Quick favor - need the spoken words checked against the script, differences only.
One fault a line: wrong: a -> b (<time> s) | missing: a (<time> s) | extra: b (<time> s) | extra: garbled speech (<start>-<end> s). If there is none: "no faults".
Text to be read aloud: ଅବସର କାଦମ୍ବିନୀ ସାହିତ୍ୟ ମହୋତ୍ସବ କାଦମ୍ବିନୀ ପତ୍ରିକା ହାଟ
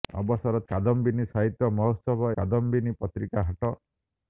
no faults